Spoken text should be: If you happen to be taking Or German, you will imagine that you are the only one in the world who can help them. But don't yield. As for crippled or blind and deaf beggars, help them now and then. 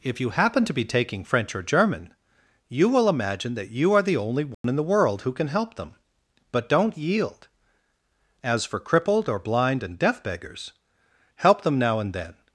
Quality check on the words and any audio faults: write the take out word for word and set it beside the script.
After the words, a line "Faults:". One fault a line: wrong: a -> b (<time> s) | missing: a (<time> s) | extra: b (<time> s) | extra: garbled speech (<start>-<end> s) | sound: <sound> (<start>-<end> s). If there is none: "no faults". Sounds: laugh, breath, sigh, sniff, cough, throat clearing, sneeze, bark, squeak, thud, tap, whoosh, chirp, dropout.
If you happen to be taking French or German, you will imagine that you are the only one in the world who can help them. But don't yield. As for crippled or blind and deaf beggars, help them now and then.
Faults:
extra: French (1.2 s)
sound: dropout (4.5-4.6 s)